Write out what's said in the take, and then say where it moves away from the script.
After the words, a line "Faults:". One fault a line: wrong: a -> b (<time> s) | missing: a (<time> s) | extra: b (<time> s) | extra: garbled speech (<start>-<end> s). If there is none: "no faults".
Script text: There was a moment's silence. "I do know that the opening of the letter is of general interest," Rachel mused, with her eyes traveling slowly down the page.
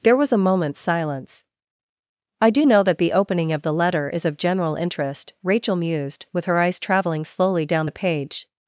There was a moment's silence. "I do know that the opening of the letter is of general interest," Rachel mused, with her eyes traveling slowly down the page.
Faults:
no faults